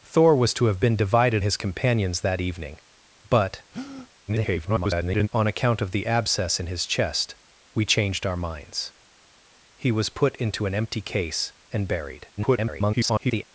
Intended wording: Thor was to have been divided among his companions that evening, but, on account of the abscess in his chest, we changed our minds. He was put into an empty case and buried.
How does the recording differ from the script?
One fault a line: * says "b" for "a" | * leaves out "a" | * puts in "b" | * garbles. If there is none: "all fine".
* leaves out "among"
* garbles
* garbles